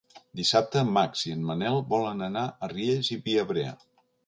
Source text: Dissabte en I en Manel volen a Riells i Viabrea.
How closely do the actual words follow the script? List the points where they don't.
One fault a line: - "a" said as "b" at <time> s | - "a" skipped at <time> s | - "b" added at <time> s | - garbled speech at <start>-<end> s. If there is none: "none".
- "Max" added at 0.9 s
- "anar" added at 2.3 s